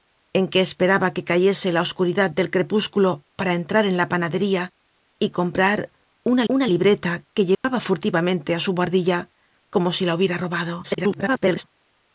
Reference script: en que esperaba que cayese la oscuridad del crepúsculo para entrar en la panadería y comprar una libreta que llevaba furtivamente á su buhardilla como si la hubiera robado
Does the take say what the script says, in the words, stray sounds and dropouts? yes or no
no